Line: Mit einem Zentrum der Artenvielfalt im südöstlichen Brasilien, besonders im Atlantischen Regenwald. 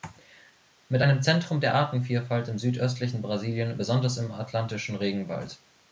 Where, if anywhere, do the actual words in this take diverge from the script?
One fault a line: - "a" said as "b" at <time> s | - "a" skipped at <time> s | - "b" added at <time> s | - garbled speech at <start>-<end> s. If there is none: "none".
none